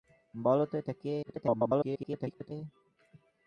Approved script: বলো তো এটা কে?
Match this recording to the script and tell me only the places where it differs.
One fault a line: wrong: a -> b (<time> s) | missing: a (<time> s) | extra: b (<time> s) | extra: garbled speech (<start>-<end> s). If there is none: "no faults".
extra: garbled speech (1.2-2.5 s)